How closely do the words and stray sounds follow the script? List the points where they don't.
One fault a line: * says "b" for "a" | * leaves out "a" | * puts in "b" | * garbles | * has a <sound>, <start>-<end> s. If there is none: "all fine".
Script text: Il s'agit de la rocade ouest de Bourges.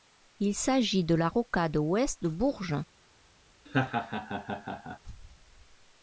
* has a laugh, 3.7-5.0 s